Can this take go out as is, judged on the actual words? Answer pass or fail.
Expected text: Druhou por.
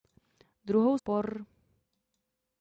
pass